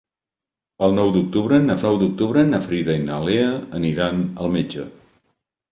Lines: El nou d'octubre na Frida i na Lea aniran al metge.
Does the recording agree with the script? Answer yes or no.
no